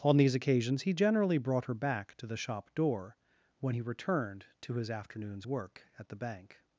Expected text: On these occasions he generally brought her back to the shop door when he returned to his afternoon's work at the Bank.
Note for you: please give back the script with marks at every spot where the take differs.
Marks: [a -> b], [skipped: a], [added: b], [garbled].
On these occasions he generally brought her back to the shop door when he returned to his afternoon's work at the Bank.